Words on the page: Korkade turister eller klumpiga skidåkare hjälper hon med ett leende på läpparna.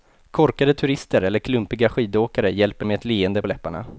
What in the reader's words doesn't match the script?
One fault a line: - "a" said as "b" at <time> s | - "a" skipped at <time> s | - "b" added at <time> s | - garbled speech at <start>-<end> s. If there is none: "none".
- "hon" skipped at 2.9 s
- "på" skipped at 3.4 s